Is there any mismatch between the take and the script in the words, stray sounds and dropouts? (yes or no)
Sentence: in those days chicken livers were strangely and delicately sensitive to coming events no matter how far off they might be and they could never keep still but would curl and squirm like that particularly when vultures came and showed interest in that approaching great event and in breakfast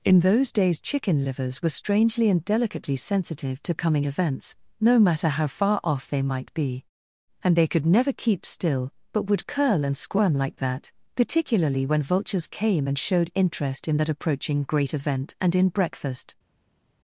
no